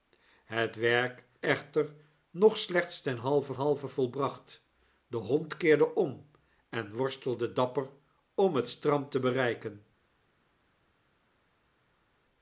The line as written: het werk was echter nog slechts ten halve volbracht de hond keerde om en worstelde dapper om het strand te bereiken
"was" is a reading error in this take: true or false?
true